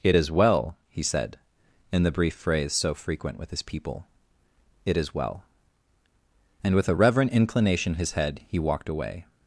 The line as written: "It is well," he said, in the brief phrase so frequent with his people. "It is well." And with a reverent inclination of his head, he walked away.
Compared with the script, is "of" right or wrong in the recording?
wrong